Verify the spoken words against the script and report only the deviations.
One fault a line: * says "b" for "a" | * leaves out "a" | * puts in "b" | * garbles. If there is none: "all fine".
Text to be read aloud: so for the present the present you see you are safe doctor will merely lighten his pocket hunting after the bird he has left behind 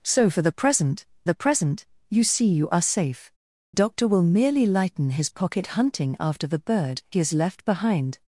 all fine